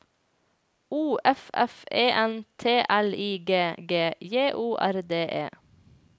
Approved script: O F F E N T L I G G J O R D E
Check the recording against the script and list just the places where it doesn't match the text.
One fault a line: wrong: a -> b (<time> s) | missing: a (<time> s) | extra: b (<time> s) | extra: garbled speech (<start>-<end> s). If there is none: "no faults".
no faults